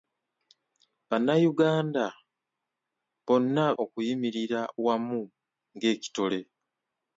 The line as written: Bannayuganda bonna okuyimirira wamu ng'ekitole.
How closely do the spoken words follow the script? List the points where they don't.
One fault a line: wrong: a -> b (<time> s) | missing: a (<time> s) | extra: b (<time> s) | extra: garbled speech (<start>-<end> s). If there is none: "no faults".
no faults